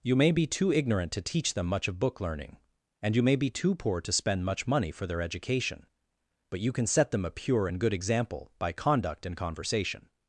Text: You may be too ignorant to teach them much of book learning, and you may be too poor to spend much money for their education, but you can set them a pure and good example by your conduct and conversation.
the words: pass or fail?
fail